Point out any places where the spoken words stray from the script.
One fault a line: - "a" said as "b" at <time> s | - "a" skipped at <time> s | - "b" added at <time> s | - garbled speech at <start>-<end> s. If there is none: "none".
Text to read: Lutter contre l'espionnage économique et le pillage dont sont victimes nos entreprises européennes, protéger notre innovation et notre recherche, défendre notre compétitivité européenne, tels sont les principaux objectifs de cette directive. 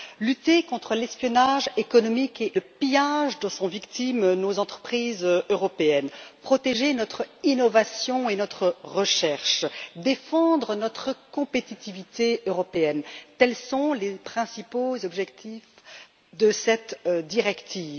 none